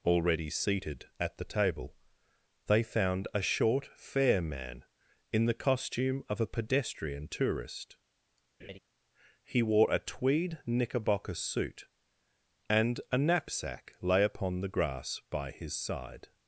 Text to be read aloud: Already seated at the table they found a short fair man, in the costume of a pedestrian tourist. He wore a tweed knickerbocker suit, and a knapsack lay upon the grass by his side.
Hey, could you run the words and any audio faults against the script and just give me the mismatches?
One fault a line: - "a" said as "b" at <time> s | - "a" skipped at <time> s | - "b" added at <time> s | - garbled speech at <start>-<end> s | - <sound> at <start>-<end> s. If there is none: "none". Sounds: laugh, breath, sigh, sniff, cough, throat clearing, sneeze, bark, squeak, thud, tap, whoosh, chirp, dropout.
- laugh at 8.6-8.8 s